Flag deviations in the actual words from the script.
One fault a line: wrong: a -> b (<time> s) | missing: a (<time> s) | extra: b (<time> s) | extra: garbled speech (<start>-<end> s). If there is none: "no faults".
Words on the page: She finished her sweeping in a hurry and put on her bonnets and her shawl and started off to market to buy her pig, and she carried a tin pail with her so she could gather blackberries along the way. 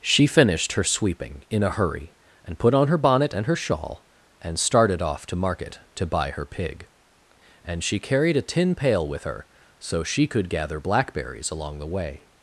wrong: bonnets -> bonnet (3.0 s)